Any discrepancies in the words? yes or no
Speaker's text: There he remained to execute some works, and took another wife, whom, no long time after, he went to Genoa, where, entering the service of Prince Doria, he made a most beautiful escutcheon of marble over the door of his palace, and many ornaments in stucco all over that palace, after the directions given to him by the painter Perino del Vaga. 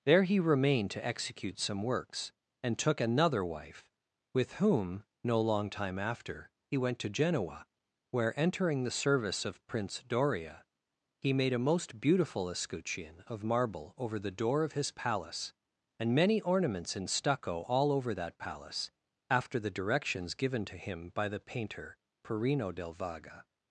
yes